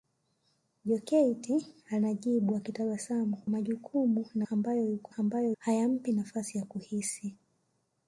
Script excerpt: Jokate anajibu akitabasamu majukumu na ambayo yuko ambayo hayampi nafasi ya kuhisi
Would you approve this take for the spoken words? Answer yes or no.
yes